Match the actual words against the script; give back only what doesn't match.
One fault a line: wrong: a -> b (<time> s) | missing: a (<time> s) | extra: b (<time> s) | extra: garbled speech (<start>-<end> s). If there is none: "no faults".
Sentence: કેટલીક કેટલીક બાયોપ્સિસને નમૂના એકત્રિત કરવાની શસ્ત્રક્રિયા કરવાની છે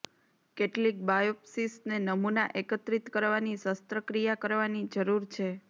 missing: કેટલીક (1.0 s)
extra: જરૂર (4.9 s)